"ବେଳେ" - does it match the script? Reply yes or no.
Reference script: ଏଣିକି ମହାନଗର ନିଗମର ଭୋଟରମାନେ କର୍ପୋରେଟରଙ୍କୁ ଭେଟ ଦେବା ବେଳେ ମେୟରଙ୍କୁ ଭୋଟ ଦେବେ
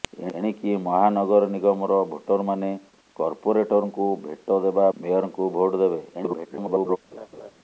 no